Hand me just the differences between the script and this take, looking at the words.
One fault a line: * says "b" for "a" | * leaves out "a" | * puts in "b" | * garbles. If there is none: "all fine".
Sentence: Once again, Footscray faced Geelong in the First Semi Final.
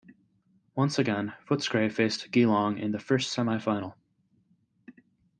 all fine